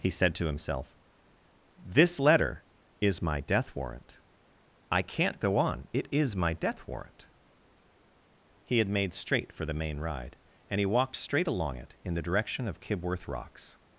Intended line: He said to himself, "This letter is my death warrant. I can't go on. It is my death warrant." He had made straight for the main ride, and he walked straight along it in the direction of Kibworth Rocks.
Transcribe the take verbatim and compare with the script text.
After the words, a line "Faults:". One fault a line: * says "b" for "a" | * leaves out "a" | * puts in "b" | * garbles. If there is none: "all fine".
He said to himself, "This letter is my death warrant. I can't go on. It is my death warrant." He had made straight for the main ride, and he walked straight along it in the direction of Kibworth Rocks.
Faults:
all fine